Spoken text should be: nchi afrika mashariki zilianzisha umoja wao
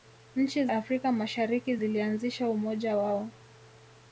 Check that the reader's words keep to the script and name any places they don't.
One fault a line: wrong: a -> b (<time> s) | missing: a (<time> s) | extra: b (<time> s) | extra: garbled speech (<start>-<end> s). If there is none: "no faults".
no faults